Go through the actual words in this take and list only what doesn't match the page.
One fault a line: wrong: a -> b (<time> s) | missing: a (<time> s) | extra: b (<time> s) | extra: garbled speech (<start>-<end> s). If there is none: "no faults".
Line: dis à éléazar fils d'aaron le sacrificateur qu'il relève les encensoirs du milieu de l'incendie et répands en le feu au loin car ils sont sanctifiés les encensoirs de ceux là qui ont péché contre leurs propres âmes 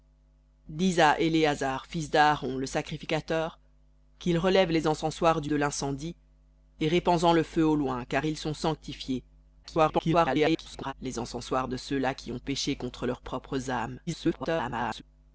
missing: milieu (5.5 s)
extra: garbled speech (9.6-10.9 s)
extra: garbled speech (14.1-15.0 s)